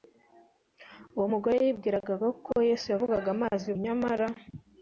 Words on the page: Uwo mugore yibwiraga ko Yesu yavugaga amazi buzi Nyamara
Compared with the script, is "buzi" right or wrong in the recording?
wrong